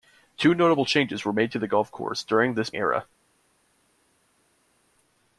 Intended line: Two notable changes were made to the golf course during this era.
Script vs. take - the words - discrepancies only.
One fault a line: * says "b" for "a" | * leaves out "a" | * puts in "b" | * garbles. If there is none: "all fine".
all fine